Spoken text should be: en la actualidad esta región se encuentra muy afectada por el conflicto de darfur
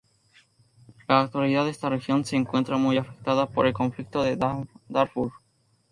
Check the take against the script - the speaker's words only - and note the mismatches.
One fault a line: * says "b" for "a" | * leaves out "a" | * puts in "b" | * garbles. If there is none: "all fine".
all fine